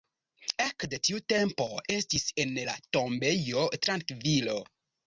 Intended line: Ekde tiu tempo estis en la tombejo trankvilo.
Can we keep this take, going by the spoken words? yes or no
yes